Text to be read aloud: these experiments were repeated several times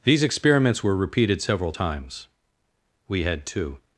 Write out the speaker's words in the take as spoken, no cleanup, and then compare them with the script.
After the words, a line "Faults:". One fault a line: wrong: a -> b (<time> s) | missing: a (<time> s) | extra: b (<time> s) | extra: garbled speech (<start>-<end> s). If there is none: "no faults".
these experiments were repeated several times we had two
Faults:
extra: we had two (3.1 s)